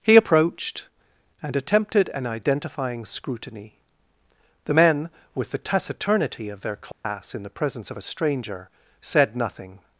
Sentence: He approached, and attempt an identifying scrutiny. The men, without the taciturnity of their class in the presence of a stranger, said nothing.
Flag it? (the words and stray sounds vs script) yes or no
yes